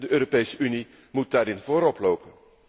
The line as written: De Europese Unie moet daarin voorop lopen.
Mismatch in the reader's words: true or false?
false